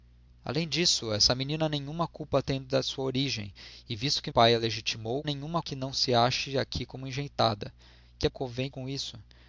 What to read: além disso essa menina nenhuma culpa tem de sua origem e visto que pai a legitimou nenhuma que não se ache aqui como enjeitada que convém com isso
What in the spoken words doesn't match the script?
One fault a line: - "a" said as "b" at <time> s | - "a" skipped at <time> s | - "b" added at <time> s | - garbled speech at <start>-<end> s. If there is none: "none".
none